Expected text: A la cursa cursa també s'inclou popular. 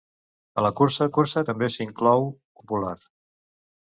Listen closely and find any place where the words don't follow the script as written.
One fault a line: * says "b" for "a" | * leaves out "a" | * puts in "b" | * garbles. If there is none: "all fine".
all fine